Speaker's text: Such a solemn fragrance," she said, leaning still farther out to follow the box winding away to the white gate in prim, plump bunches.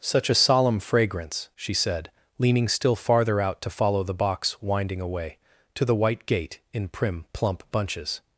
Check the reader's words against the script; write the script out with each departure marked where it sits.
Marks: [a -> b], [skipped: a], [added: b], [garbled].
Such a solemn fragrance," she said, leaning still farther out to follow the box winding away to the white gate in prim, plump bunches.